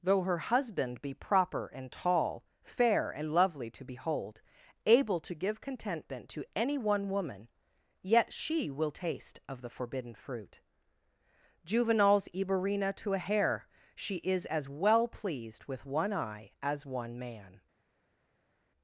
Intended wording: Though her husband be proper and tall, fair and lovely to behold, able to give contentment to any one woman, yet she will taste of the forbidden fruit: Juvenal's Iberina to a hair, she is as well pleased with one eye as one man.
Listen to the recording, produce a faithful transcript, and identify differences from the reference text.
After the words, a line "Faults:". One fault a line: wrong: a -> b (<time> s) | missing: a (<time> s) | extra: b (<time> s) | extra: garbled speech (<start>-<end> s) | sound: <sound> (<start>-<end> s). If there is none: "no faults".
Though her husband be proper and tall, fair and lovely to behold, able to give contentment to any one woman, yet she will taste of the forbidden fruit: Juvenal's Iberina to a hair, she is as well pleased with one eye as one man.
Faults:
no faults